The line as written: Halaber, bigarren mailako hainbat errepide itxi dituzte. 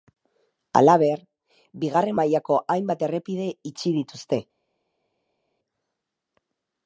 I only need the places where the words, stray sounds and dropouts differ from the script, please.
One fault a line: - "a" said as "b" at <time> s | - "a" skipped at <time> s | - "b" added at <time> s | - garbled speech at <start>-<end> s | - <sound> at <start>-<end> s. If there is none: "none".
none